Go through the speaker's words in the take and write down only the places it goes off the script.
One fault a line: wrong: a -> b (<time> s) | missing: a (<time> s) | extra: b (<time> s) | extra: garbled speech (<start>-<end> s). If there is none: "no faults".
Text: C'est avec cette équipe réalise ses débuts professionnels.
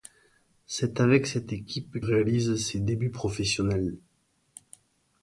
no faults